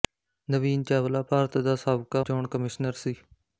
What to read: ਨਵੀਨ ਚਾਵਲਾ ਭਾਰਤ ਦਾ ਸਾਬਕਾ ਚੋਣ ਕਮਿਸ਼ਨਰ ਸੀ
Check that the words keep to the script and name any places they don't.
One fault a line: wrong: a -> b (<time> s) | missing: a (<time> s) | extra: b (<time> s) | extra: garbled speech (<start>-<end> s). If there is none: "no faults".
no faults